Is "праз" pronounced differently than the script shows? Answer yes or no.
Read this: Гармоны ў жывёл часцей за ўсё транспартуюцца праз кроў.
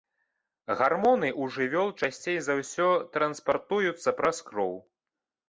no